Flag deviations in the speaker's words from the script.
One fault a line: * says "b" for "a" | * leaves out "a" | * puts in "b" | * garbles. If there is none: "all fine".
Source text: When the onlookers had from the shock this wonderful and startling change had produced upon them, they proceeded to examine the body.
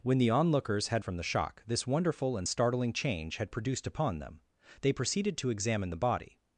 all fine